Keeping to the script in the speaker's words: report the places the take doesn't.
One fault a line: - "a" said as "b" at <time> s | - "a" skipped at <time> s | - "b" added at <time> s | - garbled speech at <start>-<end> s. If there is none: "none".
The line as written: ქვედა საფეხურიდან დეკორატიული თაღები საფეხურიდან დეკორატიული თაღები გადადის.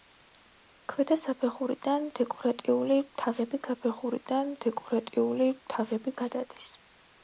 none